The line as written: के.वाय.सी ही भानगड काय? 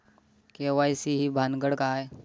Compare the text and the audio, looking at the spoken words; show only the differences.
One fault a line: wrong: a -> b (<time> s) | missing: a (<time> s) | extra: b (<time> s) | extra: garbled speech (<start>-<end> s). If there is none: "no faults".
no faults